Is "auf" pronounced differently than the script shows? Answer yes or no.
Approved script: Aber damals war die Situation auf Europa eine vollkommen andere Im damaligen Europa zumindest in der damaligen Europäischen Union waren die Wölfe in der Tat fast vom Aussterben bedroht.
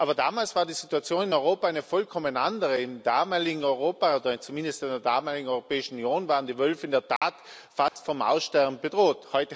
yes